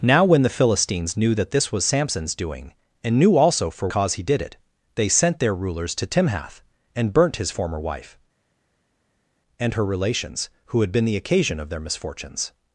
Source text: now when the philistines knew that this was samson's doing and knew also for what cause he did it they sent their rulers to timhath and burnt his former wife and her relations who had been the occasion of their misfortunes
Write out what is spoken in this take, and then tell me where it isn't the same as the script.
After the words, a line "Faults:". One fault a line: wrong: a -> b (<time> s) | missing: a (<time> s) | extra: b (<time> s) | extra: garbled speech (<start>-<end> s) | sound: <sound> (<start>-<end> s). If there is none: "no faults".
now when the philistines knew that this was samson's doing and knew also for cause he did it they sent their rulers to timhath and burnt his former wife and her relations who had been the occasion of their misfortunes
Faults:
missing: what (3.9 s)